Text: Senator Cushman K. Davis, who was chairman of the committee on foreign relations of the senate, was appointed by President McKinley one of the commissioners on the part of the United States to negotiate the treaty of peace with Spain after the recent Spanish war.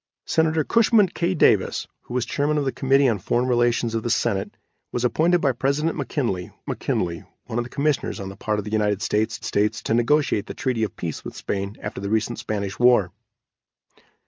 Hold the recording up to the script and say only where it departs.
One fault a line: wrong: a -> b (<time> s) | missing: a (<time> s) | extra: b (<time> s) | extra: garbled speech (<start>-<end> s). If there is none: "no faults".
extra: McKinley (6.6 s)
extra: States (9.4 s)